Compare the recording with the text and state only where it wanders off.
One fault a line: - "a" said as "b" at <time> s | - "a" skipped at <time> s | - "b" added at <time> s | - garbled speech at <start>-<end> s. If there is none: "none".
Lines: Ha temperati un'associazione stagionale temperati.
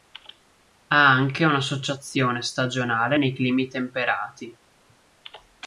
- "temperati" said as "anche" at 1.1 s
- "nei climi" added at 3.2 s